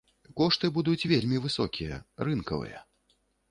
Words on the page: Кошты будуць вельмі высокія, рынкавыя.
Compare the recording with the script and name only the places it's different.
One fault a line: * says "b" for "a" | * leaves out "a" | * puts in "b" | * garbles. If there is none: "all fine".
all fine